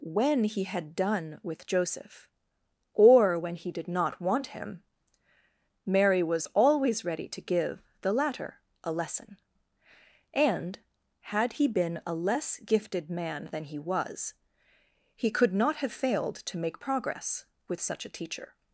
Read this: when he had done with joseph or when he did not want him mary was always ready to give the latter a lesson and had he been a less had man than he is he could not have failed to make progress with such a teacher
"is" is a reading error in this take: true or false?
true